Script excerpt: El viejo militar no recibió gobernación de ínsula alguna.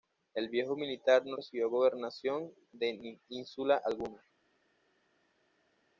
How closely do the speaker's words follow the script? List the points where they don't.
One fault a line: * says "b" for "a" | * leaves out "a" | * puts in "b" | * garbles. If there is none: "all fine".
all fine